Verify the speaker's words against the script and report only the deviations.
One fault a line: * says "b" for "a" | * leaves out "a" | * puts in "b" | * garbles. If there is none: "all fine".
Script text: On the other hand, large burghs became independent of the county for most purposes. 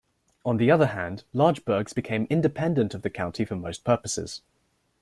all fine